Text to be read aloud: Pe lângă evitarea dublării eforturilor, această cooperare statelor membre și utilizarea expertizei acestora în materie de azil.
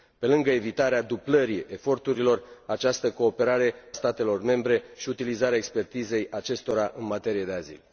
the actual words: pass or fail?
pass